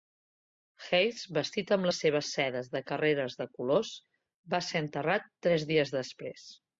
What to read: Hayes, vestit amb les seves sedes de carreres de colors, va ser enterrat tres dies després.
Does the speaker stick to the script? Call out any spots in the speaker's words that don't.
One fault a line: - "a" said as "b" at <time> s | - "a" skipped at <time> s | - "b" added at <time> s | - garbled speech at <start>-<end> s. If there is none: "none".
none